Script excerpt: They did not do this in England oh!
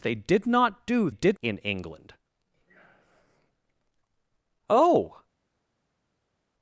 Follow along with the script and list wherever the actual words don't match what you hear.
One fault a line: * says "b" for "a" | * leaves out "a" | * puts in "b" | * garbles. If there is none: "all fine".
* says "did" for "this"